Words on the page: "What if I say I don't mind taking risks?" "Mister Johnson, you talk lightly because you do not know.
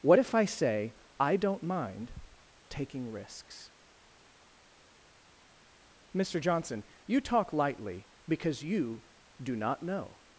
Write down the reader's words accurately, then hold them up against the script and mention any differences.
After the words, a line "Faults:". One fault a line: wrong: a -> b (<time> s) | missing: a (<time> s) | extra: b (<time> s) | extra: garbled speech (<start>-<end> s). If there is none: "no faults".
"What if I say I don't mind taking risks?" "Mister Johnson, you talk lightly because you do not know.
Faults:
no faults